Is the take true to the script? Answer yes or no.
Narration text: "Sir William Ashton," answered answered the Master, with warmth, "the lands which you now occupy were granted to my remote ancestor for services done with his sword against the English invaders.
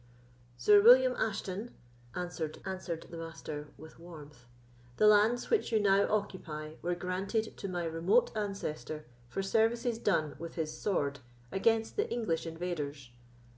yes